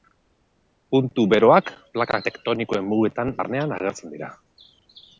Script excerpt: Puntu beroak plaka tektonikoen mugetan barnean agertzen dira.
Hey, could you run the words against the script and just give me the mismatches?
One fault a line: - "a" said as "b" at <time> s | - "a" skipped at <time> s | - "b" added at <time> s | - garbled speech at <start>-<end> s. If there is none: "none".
none